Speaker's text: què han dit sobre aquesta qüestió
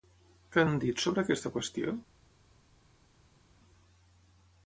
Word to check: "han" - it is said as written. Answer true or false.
true